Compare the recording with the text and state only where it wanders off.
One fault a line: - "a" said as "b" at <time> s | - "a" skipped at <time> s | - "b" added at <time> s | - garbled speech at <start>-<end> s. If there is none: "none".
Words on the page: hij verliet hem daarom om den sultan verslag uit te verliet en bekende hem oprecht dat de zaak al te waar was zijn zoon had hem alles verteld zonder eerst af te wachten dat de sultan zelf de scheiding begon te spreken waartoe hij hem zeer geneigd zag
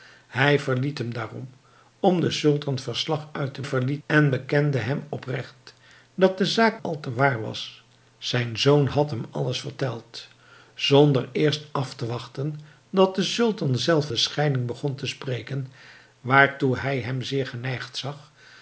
none